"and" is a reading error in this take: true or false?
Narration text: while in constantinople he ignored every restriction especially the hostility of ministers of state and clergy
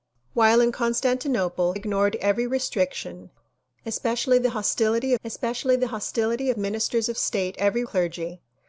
true